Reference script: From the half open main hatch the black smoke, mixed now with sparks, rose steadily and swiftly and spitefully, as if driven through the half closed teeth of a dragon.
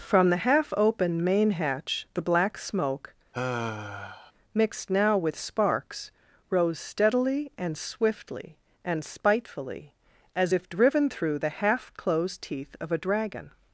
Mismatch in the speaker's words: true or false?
false